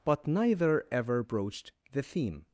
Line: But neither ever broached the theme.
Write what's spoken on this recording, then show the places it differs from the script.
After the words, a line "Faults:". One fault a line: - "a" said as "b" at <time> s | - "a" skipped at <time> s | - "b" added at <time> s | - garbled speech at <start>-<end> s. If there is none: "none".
But neither ever broached the theme.
Faults:
none